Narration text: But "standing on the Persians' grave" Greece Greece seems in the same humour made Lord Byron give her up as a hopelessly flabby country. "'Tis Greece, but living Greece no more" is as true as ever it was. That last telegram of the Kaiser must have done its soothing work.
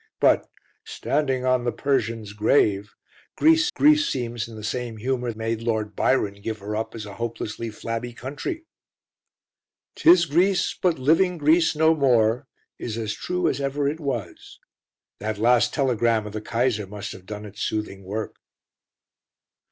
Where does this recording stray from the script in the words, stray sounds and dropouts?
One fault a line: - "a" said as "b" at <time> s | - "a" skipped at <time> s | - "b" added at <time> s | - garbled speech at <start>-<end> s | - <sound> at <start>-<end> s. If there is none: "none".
none